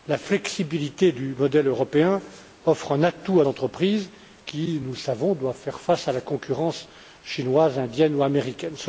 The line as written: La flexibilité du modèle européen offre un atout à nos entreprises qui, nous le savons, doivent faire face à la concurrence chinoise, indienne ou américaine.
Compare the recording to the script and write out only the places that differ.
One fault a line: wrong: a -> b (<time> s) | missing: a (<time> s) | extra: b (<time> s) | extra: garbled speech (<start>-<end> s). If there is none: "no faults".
missing: nos (3.5 s)